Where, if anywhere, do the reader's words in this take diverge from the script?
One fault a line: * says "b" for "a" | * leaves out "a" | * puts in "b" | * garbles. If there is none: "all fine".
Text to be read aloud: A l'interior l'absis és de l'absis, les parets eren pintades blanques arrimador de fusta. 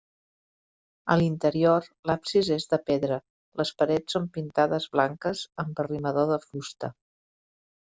* says "pedra" for "l'absis"
* says "són" for "eren"
* puts in "amb"